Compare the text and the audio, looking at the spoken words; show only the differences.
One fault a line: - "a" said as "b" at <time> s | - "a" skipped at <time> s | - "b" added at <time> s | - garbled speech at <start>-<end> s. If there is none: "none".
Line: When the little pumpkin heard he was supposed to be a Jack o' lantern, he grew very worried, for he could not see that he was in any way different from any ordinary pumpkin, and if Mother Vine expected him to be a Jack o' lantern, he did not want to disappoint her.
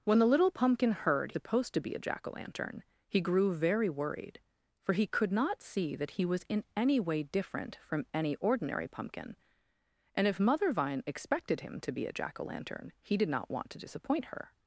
- "he was" skipped at 1.3 s